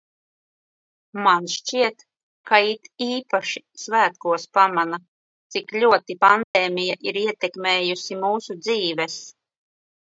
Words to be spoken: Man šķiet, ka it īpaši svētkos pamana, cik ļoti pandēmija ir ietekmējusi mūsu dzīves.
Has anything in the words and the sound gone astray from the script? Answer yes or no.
yes